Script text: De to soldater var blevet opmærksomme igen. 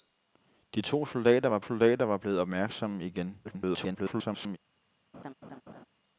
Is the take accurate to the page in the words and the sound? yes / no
no